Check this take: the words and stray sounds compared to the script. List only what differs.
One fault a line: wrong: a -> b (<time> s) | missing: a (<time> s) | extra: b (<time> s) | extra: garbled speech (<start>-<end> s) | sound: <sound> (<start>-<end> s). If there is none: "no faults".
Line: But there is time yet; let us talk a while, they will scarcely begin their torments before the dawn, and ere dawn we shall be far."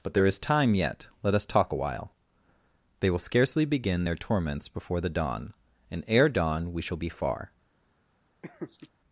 sound: laugh (8.4-8.9 s)